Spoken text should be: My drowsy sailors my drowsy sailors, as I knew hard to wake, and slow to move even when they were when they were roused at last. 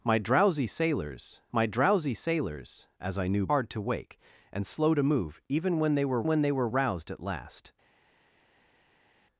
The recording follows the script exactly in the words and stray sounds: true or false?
true